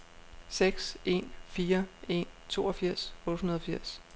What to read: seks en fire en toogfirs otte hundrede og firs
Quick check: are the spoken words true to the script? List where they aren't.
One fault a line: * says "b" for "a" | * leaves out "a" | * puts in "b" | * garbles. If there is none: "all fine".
all fine